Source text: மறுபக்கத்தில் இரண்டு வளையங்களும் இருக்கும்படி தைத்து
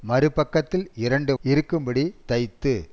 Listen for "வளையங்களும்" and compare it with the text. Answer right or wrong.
wrong